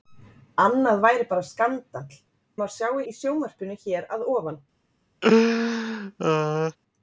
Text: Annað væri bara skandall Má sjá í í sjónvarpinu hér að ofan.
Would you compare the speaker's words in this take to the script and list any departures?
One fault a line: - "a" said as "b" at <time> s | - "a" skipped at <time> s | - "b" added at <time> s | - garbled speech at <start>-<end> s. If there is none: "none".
none